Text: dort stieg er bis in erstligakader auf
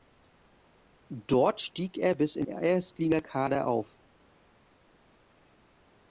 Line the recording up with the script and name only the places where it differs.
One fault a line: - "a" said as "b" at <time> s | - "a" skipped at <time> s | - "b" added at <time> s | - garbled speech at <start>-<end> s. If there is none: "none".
none